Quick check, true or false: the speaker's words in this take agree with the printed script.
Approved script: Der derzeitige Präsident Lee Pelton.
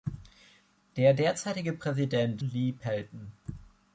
true